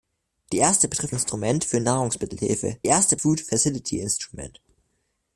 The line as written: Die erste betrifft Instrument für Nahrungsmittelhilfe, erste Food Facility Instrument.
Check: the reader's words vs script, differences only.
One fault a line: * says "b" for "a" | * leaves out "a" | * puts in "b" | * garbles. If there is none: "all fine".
all fine